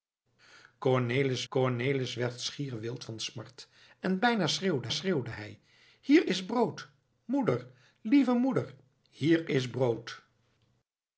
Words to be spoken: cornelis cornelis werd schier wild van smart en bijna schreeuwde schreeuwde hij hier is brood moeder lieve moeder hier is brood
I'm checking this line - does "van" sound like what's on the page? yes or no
yes